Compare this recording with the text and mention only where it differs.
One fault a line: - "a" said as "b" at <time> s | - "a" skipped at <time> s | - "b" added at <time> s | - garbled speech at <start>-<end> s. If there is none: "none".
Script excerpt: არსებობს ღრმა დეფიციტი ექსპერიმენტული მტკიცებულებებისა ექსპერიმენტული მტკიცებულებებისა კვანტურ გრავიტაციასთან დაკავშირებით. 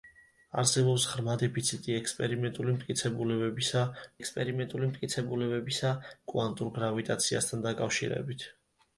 none